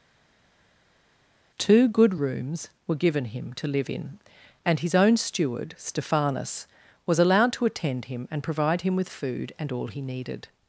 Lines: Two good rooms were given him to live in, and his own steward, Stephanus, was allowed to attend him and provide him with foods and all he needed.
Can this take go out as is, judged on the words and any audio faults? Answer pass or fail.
fail